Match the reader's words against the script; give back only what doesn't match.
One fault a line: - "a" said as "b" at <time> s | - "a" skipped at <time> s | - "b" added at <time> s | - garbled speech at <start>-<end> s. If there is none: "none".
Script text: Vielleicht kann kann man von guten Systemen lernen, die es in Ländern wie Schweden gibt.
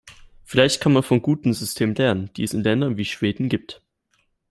- "kann" skipped at 0.9 s